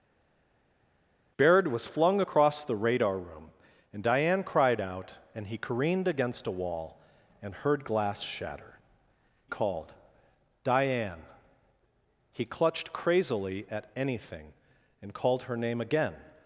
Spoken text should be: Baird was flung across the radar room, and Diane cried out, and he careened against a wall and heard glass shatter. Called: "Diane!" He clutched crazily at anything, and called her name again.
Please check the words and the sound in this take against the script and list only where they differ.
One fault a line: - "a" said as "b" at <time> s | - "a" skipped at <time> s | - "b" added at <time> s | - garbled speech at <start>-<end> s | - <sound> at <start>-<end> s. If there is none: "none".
none